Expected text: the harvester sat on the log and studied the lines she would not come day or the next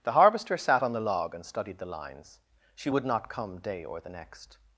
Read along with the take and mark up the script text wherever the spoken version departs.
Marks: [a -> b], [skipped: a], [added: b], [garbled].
the harvester sat on the log and studied the lines she would not come day or the next